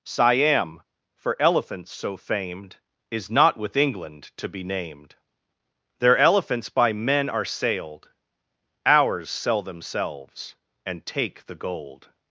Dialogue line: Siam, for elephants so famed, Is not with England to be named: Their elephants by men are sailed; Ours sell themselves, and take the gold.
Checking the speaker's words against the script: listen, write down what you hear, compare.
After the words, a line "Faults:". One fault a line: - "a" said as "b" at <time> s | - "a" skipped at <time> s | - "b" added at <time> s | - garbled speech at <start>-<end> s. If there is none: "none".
Siam, for elephants so famed, Is not with England to be named: Their elephants by men are sailed; Ours sell themselves, and take the gold.
Faults:
none